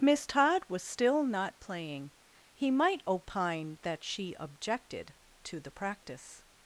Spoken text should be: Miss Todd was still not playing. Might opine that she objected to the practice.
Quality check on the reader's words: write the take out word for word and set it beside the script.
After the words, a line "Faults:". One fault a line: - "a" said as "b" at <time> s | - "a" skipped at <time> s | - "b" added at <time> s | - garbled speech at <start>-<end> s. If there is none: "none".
Miss Todd was still not playing. He might opine that she objected to the practice.
Faults:
- "He" added at 2.5 s